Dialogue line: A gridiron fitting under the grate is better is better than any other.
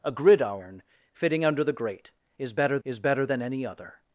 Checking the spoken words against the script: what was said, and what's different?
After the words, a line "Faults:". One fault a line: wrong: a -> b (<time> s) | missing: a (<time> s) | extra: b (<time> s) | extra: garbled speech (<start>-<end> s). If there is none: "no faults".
A gridiron fitting under the grate is better is better than any other.
Faults:
no faults